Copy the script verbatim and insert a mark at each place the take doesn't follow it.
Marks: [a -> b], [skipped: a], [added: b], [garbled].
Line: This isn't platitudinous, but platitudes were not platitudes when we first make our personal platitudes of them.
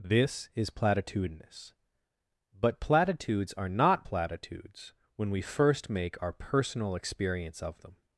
This [isn't -> is] platitudinous, but platitudes [were -> are] not platitudes when we first make our personal [platitudes -> experience] of them.